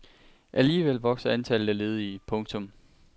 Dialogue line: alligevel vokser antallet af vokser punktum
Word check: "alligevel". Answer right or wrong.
right